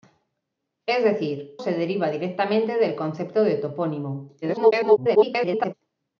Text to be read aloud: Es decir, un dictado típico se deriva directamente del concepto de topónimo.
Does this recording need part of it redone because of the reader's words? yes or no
yes